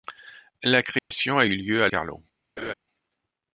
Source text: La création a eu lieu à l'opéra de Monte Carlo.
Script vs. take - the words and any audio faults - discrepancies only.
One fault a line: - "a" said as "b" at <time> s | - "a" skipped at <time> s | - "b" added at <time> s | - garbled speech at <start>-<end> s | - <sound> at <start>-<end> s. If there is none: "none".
- dropout at 1.0-1.1 s
- "l'opéra de Monte" skipped at 1.9 s
- laugh at 2.6-2.7 s